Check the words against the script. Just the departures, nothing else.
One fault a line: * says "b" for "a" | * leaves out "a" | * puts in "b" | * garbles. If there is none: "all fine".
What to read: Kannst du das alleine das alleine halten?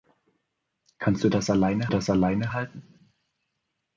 all fine